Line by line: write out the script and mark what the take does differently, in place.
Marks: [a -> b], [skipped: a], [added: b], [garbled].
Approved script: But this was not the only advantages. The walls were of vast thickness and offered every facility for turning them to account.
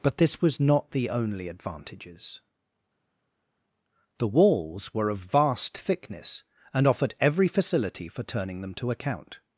But this was not the only advantages. The walls were of vast thickness and offered every facility for turning them to account.